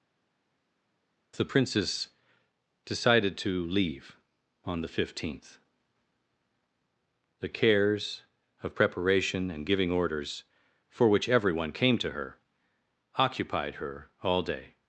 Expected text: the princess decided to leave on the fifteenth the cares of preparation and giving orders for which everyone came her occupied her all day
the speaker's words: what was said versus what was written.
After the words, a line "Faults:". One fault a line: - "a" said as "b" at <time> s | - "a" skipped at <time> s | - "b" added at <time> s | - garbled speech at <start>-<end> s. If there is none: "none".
the princess decided to leave on the fifteenth the cares of preparation and giving orders for which everyone came to her occupied her all day
Faults:
- "to" added at 12.0 s